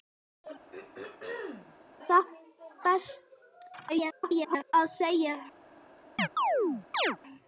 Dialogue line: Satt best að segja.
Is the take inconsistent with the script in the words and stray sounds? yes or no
yes